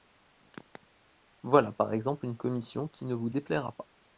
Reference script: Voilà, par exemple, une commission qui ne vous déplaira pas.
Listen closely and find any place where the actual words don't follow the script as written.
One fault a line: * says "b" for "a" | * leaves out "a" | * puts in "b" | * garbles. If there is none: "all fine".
all fine